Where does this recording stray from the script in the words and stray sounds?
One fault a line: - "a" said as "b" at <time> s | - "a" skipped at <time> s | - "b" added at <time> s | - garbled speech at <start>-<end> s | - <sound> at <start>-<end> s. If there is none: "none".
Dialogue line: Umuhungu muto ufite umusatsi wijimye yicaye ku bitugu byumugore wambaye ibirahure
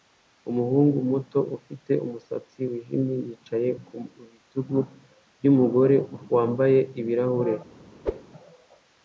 - whoosh at 8.0-8.2 s